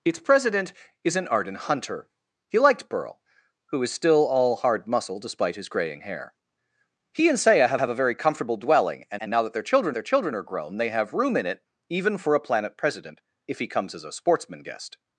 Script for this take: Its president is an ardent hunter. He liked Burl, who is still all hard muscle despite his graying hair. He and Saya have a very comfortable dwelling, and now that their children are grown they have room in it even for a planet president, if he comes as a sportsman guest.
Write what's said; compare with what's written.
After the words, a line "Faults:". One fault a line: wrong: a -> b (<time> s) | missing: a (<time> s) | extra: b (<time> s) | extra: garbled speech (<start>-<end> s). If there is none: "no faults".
Its president is an ardent hunter. He liked Burl, who is still all hard muscle despite his graying hair. He and Saya have have a very comfortable dwelling, and and now that their children their children are grown they have room in it even for a planet president, if he comes as a sportsman guest.
Faults:
extra: have (7.8 s)
extra: and (9.2 s)
extra: their children (9.9 s)